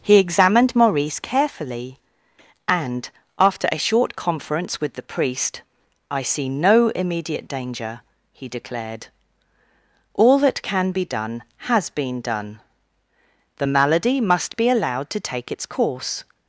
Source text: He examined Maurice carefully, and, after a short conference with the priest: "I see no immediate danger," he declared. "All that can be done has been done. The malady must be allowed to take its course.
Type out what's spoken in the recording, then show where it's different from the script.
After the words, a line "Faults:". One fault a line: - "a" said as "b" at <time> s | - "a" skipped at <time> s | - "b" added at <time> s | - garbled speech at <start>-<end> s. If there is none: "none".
He examined Maurice carefully, and, after a short conference with the priest: "I see no immediate danger," he declared. "All that can be done has been done. The malady must be allowed to take its course.
Faults:
none